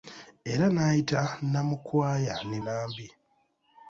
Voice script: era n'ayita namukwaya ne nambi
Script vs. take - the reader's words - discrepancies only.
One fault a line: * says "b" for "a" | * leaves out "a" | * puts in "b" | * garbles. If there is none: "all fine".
all fine